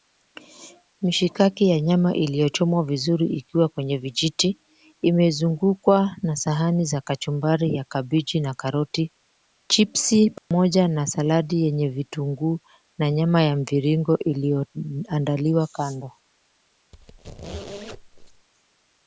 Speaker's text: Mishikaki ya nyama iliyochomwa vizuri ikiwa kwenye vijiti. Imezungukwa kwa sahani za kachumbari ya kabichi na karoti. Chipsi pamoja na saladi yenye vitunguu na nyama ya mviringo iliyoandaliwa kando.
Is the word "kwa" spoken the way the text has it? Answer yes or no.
no